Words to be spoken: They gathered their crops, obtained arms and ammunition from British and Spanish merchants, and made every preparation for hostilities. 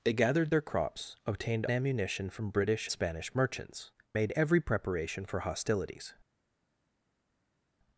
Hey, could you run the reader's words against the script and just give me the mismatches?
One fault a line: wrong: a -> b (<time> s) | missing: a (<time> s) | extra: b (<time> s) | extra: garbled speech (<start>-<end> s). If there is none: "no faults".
missing: arms and (1.7 s)
missing: and (2.9 s)
missing: and (3.9 s)